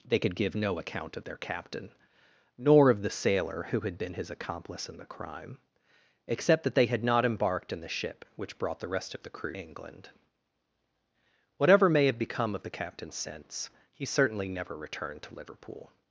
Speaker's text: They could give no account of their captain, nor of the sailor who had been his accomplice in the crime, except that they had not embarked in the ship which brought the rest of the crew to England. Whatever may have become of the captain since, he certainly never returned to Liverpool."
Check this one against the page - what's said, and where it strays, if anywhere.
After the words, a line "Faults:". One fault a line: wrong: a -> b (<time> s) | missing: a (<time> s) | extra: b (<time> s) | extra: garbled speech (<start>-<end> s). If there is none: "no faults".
They could give no account of their captain, nor of the sailor who had been his accomplice in the crime, except that they had not embarked in the ship which brought the rest of the crew England. Whatever may have become of the captain since, he certainly never returned to Liverpool."
Faults:
missing: to (9.6 s)